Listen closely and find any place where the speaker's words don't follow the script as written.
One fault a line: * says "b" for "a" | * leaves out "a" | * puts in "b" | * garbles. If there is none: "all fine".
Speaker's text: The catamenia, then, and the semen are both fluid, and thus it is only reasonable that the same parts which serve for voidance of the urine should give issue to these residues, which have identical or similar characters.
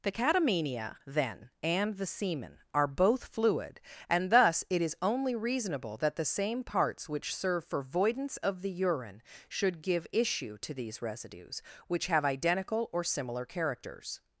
all fine